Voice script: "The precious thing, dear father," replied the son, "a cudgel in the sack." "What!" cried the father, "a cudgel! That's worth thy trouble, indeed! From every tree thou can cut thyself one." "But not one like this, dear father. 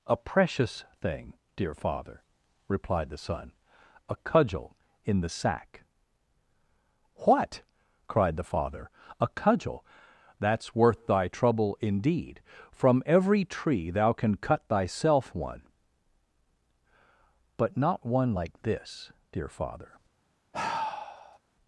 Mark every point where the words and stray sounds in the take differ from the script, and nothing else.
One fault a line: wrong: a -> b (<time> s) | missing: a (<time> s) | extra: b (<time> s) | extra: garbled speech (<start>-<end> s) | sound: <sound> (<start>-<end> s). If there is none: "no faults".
wrong: The -> A (0.1 s)
sound: sigh (20.5-21.4 s)